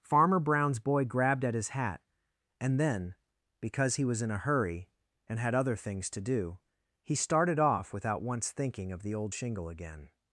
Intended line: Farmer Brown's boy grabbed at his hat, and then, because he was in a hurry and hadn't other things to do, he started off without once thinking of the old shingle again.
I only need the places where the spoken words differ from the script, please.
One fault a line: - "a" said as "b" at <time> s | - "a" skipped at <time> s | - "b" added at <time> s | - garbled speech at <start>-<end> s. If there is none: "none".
- "hadn't" said as "had" at 5.4 s